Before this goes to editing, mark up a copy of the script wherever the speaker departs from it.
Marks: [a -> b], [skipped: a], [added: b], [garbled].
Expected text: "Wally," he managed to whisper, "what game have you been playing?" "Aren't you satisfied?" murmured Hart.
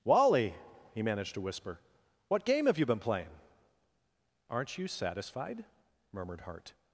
"Wally," he managed to whisper, "what game have you been playing?" "Aren't you satisfied?" murmured Hart.